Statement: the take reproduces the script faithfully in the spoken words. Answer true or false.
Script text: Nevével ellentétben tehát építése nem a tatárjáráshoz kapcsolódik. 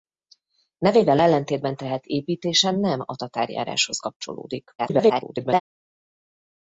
false